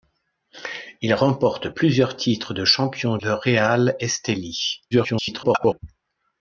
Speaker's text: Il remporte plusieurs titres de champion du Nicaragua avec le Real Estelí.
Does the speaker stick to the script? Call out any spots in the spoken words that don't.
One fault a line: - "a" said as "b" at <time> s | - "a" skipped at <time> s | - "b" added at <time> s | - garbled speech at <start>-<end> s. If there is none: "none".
- "du Nicaragua avec" skipped at 3.2 s
- garbled speech at 4.9-5.8 s